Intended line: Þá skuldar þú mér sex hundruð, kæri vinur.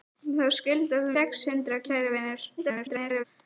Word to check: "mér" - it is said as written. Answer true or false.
false